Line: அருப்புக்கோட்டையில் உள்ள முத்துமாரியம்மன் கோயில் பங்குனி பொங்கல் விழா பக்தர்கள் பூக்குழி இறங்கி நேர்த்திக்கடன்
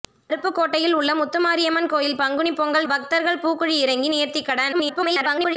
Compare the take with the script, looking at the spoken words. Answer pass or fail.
fail